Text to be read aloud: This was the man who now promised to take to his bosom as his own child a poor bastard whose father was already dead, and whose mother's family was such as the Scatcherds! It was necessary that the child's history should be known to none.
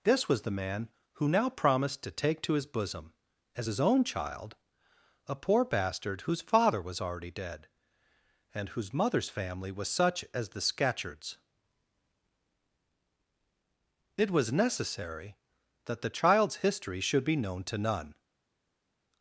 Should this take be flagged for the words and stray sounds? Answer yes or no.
no